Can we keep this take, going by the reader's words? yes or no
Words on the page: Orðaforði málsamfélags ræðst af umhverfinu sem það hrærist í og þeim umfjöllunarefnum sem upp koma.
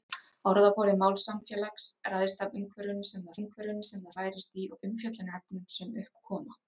no